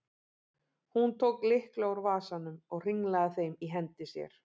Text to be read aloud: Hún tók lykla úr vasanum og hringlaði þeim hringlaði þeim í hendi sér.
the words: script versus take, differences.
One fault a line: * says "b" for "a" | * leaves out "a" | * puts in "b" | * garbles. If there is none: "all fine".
* leaves out "hringlaði þeim"